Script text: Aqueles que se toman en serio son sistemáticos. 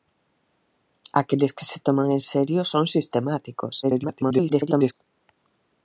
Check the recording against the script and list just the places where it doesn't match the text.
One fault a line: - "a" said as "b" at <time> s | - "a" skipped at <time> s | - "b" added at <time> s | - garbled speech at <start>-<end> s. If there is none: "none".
- garbled speech at 3.8-4.9 s